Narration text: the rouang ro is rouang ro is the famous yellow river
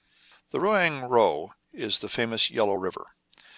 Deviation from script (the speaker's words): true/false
true